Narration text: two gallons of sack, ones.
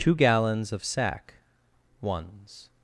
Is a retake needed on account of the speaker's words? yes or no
no